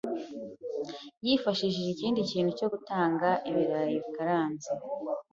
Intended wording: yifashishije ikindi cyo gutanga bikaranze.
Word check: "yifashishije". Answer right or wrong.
right